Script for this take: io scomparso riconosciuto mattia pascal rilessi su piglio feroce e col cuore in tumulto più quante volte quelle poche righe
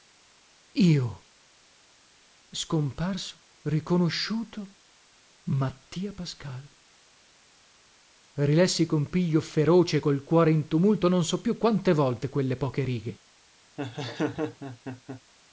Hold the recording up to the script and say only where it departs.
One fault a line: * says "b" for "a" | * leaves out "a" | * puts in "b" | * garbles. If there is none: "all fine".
* says "con" for "su"
* puts in "non so"